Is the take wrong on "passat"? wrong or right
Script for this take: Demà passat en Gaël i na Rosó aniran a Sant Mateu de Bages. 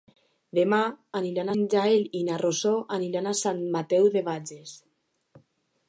wrong